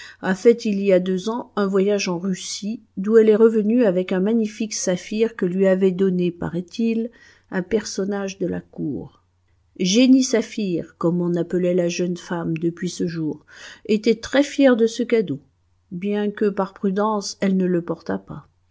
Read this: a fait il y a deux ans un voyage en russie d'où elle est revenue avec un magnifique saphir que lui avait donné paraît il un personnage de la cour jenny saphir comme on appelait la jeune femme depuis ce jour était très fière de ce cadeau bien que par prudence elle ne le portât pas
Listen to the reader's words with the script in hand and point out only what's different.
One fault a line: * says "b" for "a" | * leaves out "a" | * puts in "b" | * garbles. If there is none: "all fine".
all fine